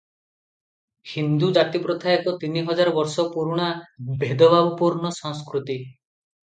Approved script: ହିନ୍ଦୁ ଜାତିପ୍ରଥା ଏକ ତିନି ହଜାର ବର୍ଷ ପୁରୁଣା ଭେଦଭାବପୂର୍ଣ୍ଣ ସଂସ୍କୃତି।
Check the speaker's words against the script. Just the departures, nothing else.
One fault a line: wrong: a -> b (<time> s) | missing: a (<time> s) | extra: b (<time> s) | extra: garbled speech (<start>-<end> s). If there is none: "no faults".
no faults